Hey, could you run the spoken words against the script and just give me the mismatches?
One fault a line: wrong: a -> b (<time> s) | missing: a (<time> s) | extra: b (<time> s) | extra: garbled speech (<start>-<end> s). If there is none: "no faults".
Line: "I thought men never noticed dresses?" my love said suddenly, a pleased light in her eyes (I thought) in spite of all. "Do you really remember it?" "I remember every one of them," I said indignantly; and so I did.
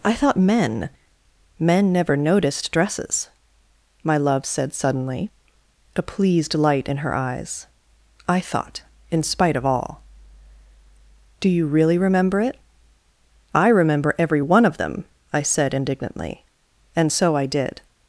extra: men (1.6 s)